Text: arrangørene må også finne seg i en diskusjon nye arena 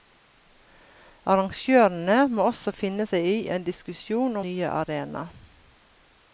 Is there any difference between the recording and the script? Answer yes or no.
no